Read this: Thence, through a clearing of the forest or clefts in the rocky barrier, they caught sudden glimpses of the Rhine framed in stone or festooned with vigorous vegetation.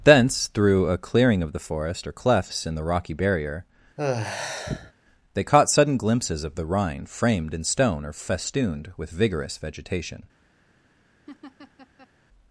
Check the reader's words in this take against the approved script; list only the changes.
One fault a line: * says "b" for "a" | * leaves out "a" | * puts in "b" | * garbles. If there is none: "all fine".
all fine